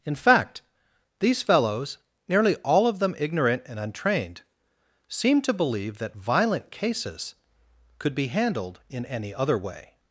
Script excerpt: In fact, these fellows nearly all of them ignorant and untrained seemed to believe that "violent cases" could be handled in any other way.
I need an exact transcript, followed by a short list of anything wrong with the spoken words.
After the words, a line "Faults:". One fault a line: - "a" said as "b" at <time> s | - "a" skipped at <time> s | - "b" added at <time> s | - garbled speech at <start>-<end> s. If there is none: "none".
In fact, these fellows nearly all of them ignorant and untrained seemed to believe that "violent cases" could be handled in any other way.
Faults:
none